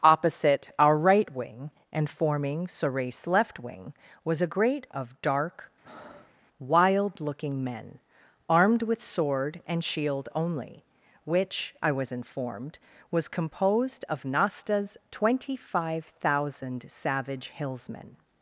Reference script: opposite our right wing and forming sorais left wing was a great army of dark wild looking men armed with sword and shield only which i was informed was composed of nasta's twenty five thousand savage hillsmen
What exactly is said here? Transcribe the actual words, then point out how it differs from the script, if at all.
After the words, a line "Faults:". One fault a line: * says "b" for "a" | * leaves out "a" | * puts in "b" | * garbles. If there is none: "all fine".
opposite our right wing and forming sorais left wing was a great of dark wild looking men armed with sword and shield only which i was informed was composed of nasta's twenty five thousand savage hillsmen
Faults:
* leaves out "army"